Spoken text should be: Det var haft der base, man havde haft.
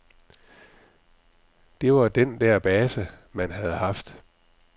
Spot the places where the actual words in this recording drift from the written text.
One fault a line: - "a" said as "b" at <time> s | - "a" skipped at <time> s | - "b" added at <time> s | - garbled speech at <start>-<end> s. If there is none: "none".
- "haft" said as "den" at 2.1 s